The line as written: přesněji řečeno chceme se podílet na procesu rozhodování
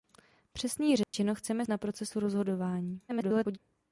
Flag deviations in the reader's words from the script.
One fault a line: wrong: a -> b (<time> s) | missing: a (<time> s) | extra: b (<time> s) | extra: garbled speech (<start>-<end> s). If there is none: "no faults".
missing: se podílet (1.6 s)
extra: garbled speech (3.1-3.6 s)